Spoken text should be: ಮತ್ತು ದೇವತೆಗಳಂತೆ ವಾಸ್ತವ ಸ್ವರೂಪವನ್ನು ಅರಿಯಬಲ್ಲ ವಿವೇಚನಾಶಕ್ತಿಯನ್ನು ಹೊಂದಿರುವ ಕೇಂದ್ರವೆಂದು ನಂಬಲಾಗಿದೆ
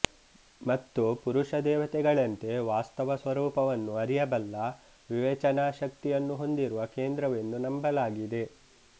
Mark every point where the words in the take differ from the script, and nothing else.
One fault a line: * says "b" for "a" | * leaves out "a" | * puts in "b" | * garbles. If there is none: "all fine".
* puts in "ಪುರುಷ"